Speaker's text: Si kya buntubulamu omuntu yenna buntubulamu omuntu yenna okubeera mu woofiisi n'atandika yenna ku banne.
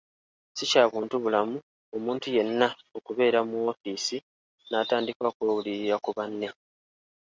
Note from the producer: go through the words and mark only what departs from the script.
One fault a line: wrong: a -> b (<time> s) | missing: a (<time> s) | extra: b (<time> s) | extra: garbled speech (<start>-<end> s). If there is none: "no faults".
missing: buntubulamu omuntu yenna (2.7 s)
wrong: yenna -> okwewulirira (5.3 s)